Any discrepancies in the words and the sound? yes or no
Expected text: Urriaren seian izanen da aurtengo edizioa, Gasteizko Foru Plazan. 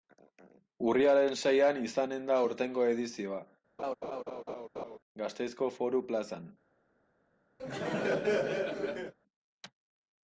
yes